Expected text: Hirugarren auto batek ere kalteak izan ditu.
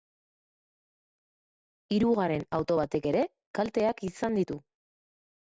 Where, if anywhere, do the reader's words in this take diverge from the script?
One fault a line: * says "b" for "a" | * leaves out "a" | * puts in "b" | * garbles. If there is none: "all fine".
all fine